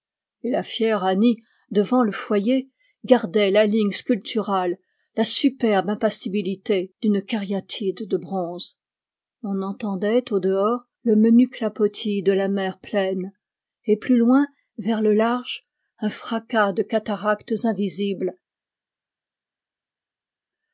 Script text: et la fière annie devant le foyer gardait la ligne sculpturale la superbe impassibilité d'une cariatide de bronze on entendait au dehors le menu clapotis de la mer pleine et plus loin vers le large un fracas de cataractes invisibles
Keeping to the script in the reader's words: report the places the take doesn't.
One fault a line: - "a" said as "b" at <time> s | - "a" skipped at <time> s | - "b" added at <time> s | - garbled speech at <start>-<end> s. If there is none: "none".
none